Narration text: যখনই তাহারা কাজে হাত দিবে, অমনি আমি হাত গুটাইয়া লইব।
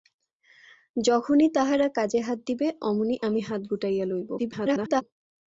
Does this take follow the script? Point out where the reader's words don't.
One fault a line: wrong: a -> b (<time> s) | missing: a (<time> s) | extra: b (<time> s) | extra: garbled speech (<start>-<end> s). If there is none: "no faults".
extra: garbled speech (4.4-5.0 s)